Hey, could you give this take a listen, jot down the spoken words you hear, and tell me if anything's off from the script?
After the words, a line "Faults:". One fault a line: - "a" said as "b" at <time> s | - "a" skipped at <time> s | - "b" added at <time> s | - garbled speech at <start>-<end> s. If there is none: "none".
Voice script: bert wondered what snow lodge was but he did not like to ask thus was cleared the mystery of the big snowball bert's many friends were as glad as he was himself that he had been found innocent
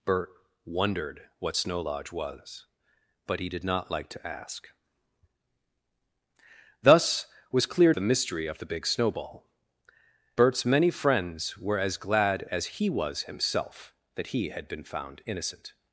bert wondered what snow lodge was but he did not like to ask thus was cleared the mystery of the big snowball bert's many friends were as glad as he was himself that he had been found innocent
Faults:
none